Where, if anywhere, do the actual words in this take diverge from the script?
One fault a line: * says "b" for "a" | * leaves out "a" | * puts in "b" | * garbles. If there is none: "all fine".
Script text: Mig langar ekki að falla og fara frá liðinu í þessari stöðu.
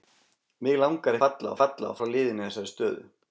* says "falla" for "ekki"
* leaves out "fara"